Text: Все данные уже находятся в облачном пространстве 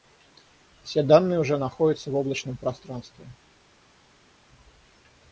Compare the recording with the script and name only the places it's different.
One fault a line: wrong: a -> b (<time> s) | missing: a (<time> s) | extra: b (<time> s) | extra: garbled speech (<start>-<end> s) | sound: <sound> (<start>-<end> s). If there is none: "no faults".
no faults